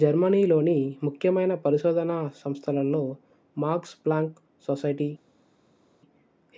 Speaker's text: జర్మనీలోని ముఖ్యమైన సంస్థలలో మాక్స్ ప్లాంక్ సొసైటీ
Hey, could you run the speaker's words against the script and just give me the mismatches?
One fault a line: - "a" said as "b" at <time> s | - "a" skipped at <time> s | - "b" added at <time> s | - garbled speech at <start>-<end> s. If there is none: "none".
- "పరిశోధనా" added at 1.6 s